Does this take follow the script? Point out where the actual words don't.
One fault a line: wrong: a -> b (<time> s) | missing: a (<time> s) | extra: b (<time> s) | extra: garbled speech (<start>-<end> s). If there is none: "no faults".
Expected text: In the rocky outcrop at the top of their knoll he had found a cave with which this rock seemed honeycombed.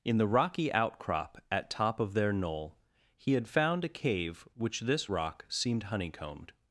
missing: the (1.7 s)
missing: with (4.5 s)